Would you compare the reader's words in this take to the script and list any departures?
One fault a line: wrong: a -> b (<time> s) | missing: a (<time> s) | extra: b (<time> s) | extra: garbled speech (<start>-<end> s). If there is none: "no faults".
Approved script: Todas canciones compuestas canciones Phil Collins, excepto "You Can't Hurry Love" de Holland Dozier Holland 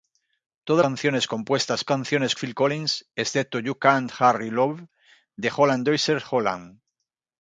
no faults